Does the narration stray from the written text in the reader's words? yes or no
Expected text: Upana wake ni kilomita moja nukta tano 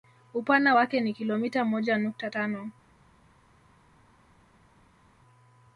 no